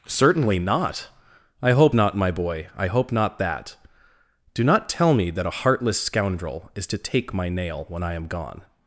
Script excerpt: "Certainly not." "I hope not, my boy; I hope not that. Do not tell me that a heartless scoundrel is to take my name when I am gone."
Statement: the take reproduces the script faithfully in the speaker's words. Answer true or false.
false